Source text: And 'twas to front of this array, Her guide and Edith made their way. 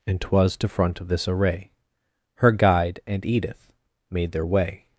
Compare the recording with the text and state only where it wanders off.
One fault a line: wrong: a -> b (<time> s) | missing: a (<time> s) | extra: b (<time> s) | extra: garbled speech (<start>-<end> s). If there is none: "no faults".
no faults